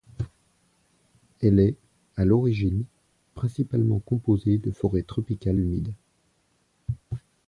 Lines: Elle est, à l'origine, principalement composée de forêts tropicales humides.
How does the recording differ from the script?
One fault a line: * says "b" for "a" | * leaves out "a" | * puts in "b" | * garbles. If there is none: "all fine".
all fine